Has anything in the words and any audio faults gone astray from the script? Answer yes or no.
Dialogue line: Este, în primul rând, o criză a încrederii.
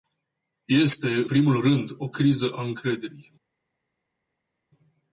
yes